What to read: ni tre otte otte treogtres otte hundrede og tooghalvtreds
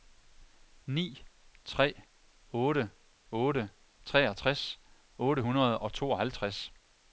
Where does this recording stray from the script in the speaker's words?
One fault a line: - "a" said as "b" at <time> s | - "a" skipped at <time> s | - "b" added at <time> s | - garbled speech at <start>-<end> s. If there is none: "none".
none